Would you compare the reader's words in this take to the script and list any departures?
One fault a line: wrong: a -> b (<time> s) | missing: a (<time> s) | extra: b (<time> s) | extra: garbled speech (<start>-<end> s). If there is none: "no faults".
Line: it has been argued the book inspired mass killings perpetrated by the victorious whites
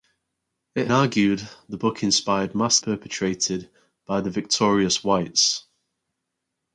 missing: has been (0.9 s)
missing: killings (2.8 s)